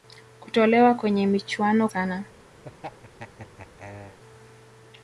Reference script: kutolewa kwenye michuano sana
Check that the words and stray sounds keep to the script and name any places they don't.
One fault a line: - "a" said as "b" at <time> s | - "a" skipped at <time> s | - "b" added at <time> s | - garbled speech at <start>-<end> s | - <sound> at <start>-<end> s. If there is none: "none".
- laugh at 2.6-4.2 s